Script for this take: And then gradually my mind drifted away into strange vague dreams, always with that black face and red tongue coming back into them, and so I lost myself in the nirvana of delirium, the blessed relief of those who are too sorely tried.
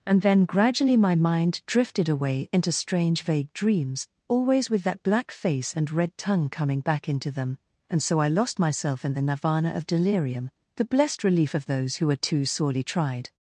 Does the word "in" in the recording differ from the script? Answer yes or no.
no